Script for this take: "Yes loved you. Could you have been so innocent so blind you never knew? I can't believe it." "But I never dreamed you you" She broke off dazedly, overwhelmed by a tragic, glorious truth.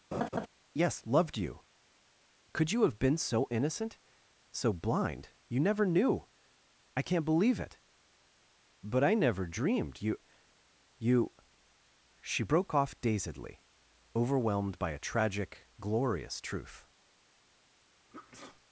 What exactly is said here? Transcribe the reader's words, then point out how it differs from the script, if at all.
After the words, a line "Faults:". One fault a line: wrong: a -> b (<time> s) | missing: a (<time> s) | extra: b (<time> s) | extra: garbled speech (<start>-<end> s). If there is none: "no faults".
"Yes loved you. Could you have been so innocent so blind you never knew? I can't believe it." "But I never dreamed you you" She broke off dazedly, overwhelmed by a tragic, glorious truth.
Faults:
no faults